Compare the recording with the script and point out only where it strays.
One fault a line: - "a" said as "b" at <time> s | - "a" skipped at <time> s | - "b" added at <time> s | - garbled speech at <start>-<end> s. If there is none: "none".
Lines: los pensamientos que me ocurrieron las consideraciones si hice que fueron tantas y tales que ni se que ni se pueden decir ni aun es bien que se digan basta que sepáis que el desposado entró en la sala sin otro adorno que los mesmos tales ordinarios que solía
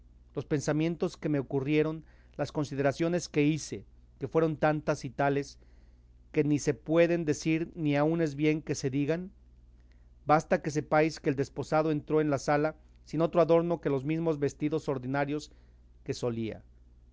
- "si" said as "que" at 3.3 s
- "que ni se" skipped at 6.7 s
- "tales" said as "vestidos" at 14.4 s